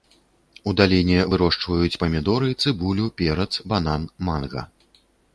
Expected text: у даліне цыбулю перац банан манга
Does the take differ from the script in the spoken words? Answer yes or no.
yes